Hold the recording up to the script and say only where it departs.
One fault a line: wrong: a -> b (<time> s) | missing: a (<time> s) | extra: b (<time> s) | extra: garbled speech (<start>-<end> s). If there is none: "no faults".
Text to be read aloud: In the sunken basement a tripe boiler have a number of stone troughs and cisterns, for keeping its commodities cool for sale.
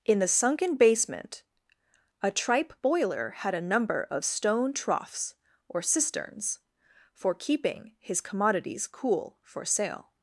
wrong: have -> had (3.3 s)
wrong: and -> or (5.7 s)
wrong: its -> his (8.0 s)